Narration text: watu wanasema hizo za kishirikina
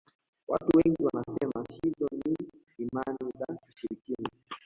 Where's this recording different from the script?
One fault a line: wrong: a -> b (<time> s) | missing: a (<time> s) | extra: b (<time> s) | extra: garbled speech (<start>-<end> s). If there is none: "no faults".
extra: wengi (0.7 s)
extra: ni imani (2.1 s)